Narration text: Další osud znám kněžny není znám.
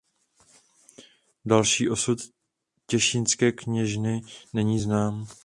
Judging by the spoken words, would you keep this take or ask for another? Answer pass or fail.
fail